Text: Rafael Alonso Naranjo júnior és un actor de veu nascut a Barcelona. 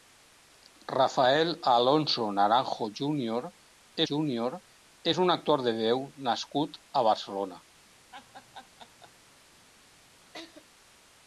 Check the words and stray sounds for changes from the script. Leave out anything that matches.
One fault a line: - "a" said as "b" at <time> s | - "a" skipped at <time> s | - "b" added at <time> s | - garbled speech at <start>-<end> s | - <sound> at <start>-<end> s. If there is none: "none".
- "júnior" added at 4.1 s
- laugh at 8.1-9.1 s
- laugh at 10.3-10.7 s